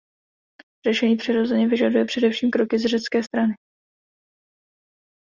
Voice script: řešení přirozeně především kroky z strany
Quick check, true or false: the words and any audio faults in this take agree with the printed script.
false